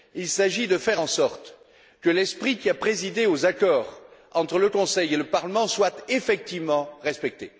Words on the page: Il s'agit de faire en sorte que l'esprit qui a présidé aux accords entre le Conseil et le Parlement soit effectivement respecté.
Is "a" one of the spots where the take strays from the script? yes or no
no